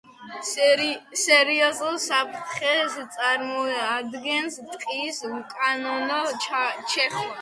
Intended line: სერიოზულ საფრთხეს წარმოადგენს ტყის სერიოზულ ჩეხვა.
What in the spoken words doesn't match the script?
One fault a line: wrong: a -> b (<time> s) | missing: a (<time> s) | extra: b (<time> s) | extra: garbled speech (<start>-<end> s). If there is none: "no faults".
wrong: სერიოზულ -> უკანონო (5.3 s)